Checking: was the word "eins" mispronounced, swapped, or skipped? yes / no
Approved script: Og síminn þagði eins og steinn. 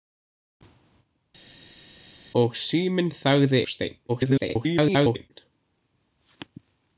yes